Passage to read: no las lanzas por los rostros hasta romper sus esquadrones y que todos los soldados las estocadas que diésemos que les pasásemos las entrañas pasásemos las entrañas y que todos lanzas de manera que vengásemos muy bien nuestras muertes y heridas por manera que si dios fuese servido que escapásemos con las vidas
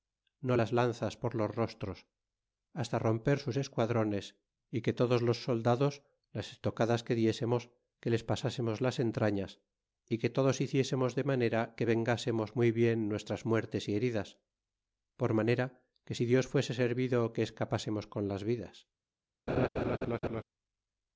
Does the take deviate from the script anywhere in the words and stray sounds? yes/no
yes